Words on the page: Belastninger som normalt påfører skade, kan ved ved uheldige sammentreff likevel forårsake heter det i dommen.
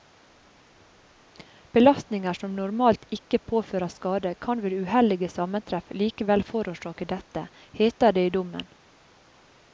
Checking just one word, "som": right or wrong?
right